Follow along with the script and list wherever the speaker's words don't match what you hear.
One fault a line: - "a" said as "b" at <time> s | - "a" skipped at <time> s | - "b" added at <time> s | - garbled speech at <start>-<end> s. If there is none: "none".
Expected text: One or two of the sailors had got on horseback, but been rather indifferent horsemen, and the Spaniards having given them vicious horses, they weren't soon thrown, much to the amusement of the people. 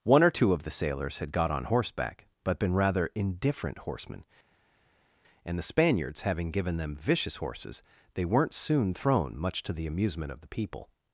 none